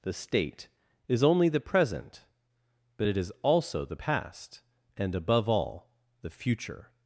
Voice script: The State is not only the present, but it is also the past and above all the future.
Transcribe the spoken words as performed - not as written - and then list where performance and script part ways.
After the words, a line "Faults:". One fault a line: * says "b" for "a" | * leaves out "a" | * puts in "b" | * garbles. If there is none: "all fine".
The State is only the present, but it is also the past and above all the future.
Faults:
* leaves out "not"